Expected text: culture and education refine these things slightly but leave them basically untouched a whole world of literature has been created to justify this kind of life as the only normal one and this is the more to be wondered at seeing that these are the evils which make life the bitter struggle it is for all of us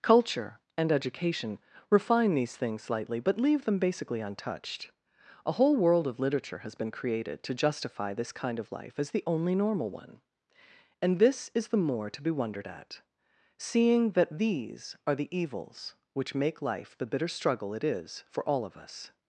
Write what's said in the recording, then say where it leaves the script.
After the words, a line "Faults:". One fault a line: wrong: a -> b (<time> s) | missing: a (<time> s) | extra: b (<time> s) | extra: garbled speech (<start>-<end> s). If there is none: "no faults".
culture and education refine these things slightly but leave them basically untouched a whole world of literature has been created to justify this kind of life as the only normal one and this is the more to be wondered at seeing that these are the evils which make life the bitter struggle it is for all of us
Faults:
no faults